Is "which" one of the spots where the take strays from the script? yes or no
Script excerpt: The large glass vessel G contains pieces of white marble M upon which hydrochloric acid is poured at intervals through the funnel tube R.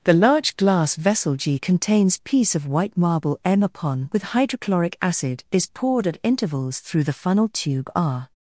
yes